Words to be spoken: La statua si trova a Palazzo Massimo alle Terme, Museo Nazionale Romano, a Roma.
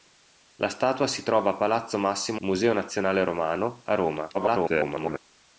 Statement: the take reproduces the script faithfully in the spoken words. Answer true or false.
false